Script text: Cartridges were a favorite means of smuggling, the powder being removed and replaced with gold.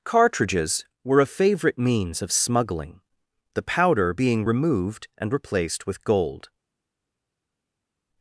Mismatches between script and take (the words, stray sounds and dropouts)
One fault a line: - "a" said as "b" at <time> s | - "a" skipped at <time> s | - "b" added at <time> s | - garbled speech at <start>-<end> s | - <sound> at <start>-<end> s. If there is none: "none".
none